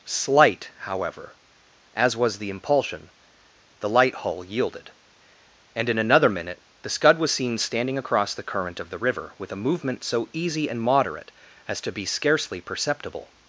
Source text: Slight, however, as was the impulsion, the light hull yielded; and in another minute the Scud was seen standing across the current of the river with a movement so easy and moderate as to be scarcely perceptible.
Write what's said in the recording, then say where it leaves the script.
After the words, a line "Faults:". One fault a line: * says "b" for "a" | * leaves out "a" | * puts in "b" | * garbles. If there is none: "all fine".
Slight, however, as was the impulsion, the light hull yielded; and in another minute the Scud was seen standing across the current of the river with a movement so easy and moderate as to be scarcely perceptible.
Faults:
all fine